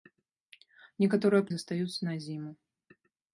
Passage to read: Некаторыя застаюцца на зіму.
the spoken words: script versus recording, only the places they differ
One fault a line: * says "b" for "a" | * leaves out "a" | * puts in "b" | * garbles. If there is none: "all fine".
all fine